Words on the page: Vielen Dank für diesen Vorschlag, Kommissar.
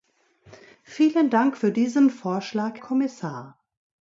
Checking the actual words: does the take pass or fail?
pass